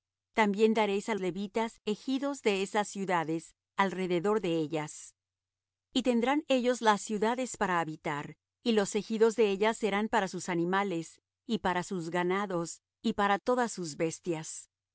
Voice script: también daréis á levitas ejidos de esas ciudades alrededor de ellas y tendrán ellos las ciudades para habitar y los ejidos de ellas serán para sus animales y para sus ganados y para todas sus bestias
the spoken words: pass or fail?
pass